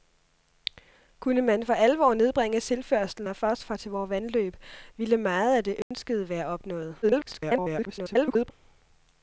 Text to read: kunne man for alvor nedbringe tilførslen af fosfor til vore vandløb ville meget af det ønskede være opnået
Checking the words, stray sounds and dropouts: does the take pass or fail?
fail